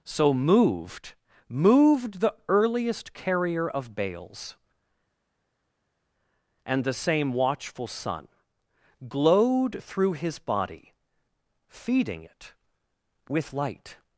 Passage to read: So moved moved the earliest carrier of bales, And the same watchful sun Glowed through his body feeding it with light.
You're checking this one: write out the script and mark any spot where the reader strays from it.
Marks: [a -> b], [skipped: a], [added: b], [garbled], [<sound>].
So moved moved the earliest carrier of bales, And the same watchful sun Glowed through his body feeding it with light.